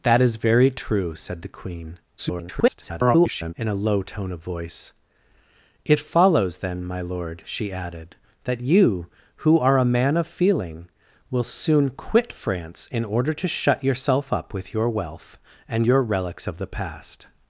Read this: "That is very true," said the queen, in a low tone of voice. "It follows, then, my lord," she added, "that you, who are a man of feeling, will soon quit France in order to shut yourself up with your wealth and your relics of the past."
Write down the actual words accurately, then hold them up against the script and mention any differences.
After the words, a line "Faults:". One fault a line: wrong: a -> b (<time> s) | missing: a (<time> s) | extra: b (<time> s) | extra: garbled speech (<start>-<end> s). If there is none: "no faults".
"That is very true," said the queen, [garbled] in a low tone of voice. "It follows, then, my lord," she added, "that you, who are a man of feeling, will soon quit France in order to shut yourself up with your wealth and your relics of the past."
Faults:
extra: garbled speech (2.2-3.5 s)